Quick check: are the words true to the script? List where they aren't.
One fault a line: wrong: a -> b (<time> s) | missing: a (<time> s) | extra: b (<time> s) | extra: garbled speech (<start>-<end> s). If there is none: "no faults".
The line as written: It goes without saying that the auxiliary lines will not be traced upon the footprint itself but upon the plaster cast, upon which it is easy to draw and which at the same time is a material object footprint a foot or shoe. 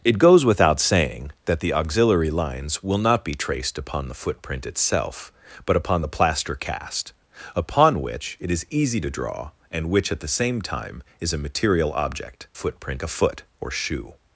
no faults